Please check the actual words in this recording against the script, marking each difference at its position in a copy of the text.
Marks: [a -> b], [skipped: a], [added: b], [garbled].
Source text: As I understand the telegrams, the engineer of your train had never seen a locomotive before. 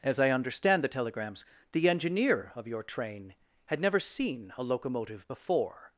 As I understand the telegrams, the engineer of your train had never seen a locomotive before.